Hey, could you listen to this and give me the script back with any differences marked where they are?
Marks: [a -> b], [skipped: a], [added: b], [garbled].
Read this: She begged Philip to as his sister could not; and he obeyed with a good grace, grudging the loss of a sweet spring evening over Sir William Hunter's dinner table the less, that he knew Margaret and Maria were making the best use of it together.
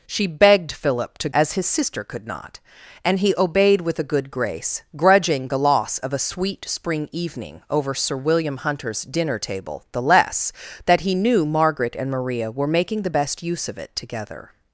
She begged Philip to as his sister could not; and he obeyed with a good grace, grudging the loss of a sweet spring evening over Sir William Hunter's dinner table the less, that he knew Margaret and Maria were making the best use of it together.